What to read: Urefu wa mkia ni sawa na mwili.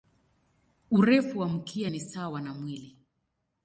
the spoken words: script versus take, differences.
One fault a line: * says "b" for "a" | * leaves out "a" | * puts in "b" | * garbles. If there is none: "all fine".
all fine